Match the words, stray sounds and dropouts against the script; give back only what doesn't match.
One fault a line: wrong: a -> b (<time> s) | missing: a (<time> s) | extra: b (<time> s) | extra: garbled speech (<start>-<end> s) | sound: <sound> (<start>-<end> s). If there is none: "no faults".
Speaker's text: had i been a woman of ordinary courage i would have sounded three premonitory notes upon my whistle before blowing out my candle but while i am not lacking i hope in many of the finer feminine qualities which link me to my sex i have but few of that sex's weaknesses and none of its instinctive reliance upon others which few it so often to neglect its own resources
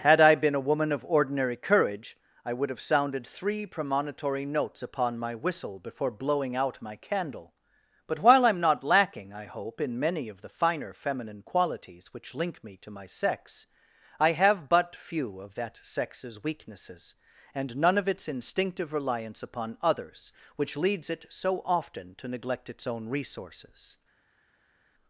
wrong: few -> leads (20.8 s)